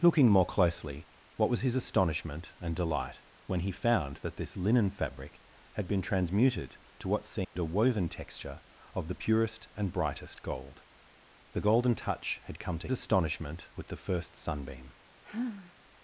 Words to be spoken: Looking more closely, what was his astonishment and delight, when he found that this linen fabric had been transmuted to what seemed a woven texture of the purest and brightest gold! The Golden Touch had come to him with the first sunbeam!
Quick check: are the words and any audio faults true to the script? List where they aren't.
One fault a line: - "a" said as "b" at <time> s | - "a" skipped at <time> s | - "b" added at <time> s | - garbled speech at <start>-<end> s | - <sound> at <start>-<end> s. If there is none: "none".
- dropout at 7.4-7.6 s
- "him" said as "astonishment" at 12.9 s
- sigh at 15.2-15.7 s